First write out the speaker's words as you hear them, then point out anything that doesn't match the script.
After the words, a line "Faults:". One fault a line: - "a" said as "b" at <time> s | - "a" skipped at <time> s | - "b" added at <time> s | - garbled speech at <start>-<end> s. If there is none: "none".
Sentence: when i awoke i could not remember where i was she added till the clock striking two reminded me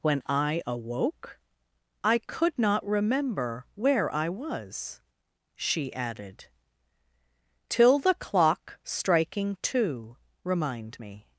when i awoke i could not remember where i was she added till the clock striking two remind me
Faults:
- "reminded" said as "remind" at 10.4 s